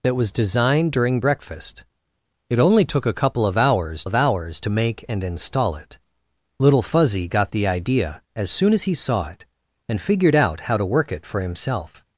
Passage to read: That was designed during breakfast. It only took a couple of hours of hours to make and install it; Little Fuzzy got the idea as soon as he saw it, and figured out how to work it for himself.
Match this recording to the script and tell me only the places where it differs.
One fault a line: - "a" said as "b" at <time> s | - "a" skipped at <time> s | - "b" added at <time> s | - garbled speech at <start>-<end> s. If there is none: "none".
none